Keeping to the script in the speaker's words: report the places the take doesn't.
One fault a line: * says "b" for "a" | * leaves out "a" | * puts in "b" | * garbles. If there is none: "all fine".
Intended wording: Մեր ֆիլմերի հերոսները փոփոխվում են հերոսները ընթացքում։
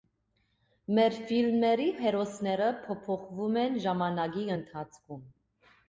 * says "ժամանակի" for "հերոսները"